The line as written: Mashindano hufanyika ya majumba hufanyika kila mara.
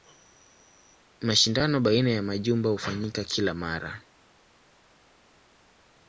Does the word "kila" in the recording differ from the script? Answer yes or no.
no